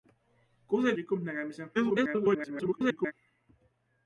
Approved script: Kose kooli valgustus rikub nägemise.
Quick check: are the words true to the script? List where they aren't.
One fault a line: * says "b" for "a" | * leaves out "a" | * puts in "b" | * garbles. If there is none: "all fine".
* leaves out "kooli valgustus"
* garbles